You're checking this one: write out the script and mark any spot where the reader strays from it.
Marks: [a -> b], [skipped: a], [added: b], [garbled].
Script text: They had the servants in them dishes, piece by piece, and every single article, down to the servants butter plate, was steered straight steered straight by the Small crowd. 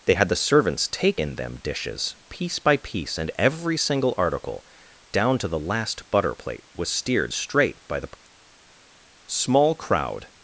They had the servants [added: take] in them dishes, piece by piece, and every single article, down to the [servants -> last] butter plate, was steered straight [skipped: steered straight] by the Small crowd.